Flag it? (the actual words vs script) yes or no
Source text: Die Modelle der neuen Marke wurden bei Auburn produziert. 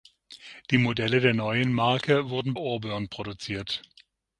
yes